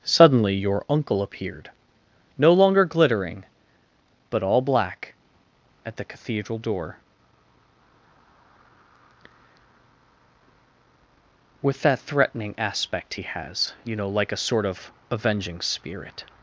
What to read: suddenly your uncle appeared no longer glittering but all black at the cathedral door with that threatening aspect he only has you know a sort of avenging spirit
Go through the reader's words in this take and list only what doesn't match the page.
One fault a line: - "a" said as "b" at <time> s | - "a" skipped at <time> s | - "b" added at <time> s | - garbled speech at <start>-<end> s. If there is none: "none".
- "only" skipped at 13.2 s
- "like" added at 14.1 s